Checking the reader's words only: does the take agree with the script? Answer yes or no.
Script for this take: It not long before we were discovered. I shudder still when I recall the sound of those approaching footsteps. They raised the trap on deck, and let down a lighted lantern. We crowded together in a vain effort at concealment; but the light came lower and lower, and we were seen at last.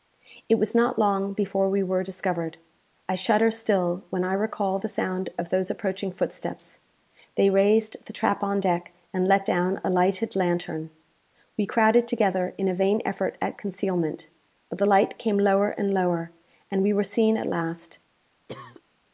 no